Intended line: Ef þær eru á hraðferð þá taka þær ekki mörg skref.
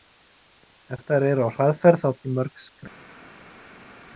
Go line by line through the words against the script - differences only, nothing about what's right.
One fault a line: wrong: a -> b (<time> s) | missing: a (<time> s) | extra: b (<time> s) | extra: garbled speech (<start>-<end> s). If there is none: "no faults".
missing: taka þær (2.1 s)